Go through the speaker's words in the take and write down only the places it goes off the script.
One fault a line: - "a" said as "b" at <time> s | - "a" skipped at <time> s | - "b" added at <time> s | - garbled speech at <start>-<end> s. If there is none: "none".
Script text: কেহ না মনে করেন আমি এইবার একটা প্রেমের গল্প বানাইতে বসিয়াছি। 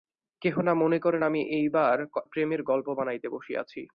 - "একটা" skipped at 2.0 s